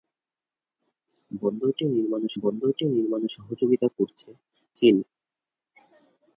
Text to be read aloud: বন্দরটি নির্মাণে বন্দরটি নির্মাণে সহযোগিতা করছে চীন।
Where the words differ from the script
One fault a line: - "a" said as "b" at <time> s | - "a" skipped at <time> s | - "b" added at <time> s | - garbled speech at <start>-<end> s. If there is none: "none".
none